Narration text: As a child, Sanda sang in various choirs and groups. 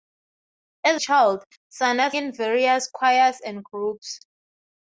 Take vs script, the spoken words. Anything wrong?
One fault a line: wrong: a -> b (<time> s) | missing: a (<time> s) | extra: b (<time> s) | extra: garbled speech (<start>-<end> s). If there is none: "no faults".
missing: a (1.0 s)
missing: sang (2.1 s)